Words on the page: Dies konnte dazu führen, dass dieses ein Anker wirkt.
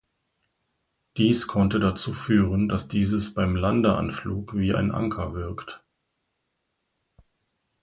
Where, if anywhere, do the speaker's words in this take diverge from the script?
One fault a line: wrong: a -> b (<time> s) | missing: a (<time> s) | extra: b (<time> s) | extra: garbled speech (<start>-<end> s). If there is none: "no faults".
extra: beim Landeanflug wie (3.4 s)